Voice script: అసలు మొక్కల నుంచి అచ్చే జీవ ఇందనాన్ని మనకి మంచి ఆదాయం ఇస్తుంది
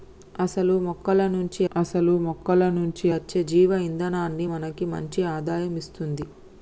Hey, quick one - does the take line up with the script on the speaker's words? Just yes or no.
no